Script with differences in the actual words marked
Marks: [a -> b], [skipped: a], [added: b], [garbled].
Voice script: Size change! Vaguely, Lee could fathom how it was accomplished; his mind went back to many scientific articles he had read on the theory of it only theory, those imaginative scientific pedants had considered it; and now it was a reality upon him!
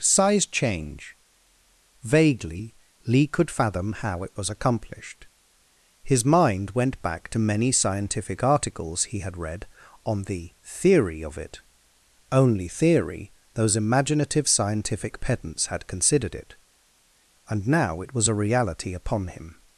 Size change! Vaguely, Lee could fathom how it was accomplished; his mind went back to many scientific articles he had read on the theory of it only theory, those imaginative scientific pedants had considered it; and now it was a reality upon him!